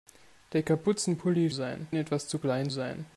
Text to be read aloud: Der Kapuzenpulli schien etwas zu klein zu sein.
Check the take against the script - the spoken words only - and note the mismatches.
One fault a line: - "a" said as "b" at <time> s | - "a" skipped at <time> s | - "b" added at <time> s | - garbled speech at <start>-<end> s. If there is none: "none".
- "schien" said as "sein" at 1.5 s
- "zu" skipped at 2.7 s